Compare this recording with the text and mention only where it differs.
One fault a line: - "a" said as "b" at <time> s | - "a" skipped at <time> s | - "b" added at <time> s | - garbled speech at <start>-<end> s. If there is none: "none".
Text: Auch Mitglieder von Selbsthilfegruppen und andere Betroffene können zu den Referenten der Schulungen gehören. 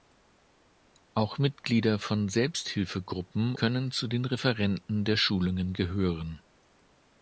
- "und andere Betroffene" skipped at 3.5 s